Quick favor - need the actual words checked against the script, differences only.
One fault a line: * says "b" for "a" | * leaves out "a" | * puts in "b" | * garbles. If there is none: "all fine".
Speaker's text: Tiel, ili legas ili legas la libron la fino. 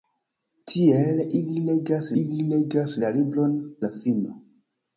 all fine